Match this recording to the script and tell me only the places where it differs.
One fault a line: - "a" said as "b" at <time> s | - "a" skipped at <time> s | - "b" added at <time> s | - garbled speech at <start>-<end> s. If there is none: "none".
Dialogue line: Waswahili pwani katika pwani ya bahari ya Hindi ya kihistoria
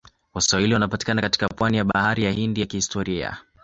- "pwani" said as "wanapatikana" at 0.7 s